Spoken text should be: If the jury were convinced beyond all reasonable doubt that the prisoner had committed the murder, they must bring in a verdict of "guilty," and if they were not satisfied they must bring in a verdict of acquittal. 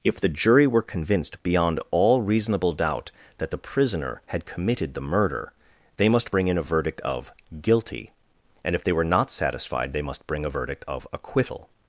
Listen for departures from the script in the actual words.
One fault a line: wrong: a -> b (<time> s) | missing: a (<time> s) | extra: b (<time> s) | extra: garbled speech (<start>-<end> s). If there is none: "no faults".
missing: in (10.5 s)